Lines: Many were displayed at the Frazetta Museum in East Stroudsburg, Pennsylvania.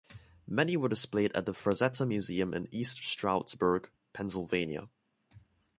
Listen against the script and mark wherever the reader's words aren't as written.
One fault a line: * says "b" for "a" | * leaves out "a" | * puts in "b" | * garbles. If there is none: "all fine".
all fine